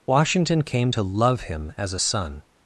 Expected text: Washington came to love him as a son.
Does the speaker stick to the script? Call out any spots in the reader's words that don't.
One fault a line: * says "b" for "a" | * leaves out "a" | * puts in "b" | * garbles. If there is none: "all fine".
all fine